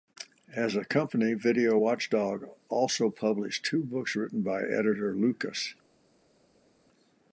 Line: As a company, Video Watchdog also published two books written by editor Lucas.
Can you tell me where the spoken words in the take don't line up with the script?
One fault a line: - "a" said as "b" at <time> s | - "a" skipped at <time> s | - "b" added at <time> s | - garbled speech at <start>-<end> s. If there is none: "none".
none